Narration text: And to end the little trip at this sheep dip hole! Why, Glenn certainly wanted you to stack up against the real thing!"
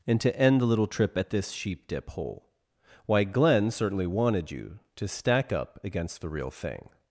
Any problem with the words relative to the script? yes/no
no